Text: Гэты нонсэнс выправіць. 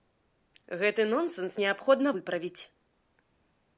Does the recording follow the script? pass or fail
fail